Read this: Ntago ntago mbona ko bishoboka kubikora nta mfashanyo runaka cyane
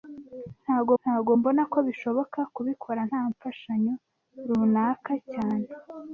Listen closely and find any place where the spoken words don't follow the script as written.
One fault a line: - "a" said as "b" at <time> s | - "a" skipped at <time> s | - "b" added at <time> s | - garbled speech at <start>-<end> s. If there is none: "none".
none